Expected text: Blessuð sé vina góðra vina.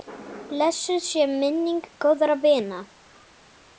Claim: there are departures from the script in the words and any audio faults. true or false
true